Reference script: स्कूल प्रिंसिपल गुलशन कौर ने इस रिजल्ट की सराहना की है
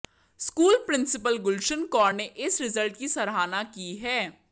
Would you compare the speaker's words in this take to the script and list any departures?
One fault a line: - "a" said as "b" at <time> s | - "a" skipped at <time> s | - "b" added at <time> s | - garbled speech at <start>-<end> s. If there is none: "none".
none